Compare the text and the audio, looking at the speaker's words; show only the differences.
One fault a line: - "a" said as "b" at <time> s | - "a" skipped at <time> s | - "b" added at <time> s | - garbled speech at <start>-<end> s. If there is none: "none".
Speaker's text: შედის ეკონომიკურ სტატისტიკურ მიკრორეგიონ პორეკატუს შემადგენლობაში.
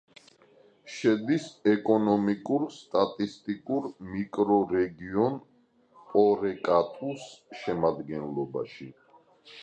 none